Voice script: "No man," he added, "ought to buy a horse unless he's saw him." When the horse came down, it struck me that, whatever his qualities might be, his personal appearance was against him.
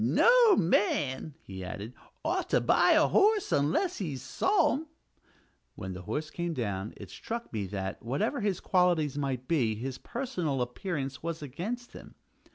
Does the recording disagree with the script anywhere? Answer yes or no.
no